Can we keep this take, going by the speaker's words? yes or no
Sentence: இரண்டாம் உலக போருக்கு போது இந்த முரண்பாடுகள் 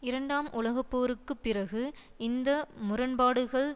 no